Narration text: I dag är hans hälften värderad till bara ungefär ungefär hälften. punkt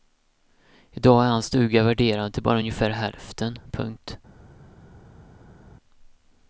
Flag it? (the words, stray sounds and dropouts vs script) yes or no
yes